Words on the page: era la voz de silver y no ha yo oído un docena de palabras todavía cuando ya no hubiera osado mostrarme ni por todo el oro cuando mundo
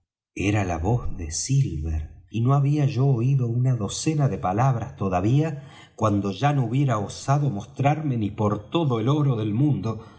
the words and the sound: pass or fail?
fail